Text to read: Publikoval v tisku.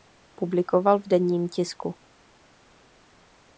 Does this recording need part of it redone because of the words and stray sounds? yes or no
yes